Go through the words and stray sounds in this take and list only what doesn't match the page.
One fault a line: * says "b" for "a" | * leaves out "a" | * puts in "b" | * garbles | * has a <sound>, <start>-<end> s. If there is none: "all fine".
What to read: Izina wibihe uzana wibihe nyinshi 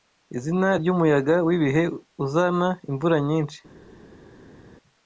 * puts in "ryumuyaga"
* says "imvura" for "wibihe"